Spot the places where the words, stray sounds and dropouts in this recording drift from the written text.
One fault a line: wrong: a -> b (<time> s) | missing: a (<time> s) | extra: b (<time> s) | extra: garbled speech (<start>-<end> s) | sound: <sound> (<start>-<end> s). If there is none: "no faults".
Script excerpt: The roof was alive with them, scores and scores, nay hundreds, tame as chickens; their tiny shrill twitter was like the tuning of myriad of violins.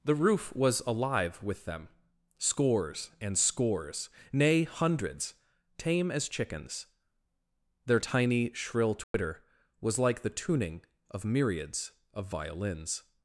sound: dropout (9.0-9.1 s)
wrong: myriad -> myriads (11.2 s)